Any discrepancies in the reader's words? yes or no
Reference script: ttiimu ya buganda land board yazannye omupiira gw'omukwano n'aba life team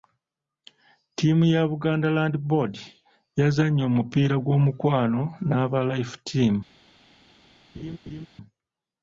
no